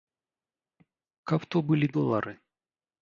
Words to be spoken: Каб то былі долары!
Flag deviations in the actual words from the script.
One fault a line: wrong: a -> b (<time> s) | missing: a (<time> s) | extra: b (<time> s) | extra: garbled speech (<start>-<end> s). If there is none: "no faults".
no faults